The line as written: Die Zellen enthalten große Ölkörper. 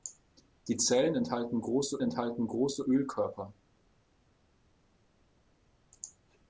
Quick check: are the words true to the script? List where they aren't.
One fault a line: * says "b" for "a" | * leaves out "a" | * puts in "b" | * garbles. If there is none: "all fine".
* puts in "enthalten große"